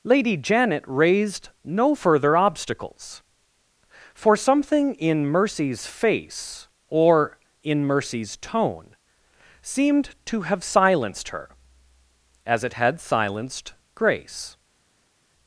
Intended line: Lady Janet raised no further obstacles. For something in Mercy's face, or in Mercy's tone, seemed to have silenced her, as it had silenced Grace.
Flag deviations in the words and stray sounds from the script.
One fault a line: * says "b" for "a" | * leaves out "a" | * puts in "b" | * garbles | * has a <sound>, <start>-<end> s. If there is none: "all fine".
all fine